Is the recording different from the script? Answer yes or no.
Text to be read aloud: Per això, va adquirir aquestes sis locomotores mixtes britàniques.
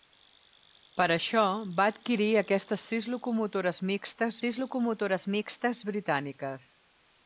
yes